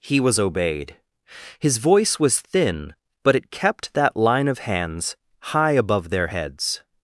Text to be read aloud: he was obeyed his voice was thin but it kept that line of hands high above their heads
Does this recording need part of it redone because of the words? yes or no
no